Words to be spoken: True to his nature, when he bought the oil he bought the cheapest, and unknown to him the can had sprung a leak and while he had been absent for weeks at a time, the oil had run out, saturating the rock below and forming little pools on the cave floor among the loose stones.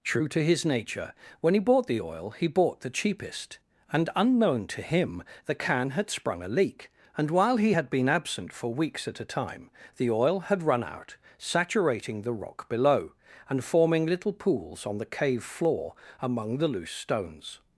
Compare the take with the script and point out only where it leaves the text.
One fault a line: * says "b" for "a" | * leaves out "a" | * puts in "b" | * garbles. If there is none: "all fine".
all fine